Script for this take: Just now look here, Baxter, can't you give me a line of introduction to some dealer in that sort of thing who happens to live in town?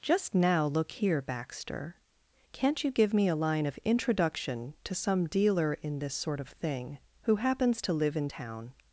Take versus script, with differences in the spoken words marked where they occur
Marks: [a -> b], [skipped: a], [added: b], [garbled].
Just now look here, Baxter, can't you give me a line of introduction to some dealer in [that -> this] sort of thing who happens to live in town?